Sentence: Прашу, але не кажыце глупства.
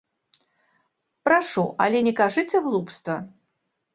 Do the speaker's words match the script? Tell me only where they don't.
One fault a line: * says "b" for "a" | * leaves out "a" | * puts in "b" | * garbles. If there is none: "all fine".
all fine